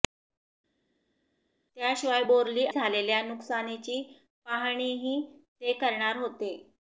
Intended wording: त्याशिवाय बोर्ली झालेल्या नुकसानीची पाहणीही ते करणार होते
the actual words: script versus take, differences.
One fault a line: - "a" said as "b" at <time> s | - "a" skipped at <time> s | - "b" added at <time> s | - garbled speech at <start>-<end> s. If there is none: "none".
none